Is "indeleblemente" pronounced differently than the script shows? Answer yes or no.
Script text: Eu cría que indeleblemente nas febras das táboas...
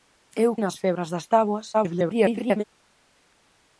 yes